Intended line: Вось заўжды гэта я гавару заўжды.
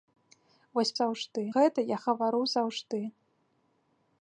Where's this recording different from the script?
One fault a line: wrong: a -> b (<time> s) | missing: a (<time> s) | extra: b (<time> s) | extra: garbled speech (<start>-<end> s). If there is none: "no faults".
no faults